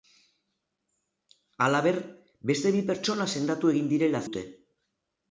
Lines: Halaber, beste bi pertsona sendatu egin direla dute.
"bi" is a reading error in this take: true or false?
false